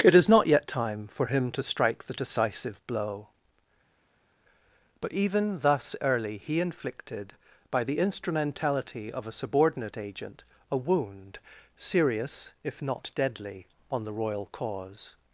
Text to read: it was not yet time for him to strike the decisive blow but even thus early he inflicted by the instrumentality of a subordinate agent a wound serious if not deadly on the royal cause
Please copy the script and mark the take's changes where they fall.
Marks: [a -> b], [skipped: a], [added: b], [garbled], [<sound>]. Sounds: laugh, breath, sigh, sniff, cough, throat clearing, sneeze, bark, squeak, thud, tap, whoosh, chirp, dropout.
it [was -> is] not yet time for him to strike the decisive blow but even thus early he inflicted by the instrumentality of a subordinate agent a wound serious if not deadly on the royal cause